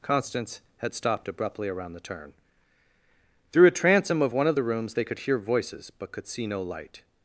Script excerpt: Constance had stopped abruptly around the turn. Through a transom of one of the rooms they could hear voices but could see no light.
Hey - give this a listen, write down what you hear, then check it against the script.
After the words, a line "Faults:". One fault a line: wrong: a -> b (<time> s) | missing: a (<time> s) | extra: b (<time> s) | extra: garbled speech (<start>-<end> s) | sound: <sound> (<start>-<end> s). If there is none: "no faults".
Constance had stopped abruptly around the turn. Through a transom of one of the rooms they could hear voices but could see no light.
Faults:
no faults